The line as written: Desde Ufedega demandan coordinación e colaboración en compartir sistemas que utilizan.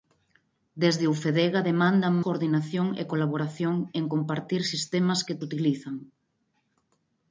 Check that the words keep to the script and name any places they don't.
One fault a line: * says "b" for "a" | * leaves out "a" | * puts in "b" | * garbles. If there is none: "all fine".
all fine